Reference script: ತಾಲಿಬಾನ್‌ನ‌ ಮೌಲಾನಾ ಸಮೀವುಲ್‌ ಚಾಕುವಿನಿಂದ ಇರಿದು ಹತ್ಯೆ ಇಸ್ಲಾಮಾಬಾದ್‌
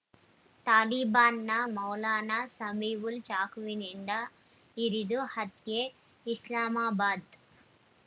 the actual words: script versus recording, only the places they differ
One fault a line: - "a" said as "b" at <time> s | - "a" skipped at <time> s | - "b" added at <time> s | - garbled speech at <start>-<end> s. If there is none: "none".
none